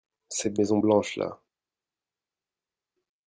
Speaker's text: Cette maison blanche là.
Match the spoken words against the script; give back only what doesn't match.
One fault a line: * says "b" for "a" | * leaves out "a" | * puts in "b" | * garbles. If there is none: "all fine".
all fine